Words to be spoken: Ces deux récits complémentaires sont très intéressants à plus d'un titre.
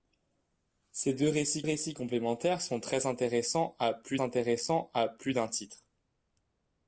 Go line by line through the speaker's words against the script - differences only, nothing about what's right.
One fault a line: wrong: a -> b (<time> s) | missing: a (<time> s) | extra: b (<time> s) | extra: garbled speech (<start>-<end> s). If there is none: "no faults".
extra: récits (1.6 s)
extra: intéressants à plus (4.2 s)